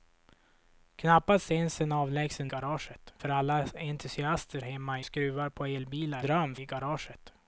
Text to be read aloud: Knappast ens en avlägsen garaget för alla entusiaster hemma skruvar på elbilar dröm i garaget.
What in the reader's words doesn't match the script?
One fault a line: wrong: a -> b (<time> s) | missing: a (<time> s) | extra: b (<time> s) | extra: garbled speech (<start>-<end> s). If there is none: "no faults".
no faults